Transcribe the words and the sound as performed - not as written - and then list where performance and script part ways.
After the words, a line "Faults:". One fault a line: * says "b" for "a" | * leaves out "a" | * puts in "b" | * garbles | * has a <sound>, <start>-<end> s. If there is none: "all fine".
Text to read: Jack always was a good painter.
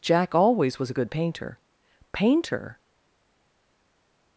Jack always was a good painter painter.
Faults:
* puts in "painter"